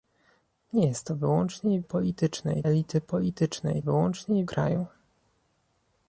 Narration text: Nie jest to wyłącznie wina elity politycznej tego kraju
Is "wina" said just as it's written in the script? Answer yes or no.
no